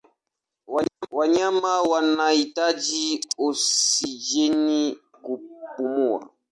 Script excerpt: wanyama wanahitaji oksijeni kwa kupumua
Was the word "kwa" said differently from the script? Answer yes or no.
yes